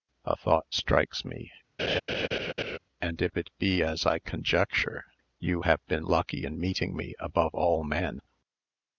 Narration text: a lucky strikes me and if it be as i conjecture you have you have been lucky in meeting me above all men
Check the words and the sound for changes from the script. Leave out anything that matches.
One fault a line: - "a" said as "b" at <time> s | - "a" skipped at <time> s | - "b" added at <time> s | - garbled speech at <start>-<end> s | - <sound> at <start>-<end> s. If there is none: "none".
- "lucky" said as "thought" at 0.3 s
- laugh at 1.8-2.8 s
- "you have" skipped at 5.8 s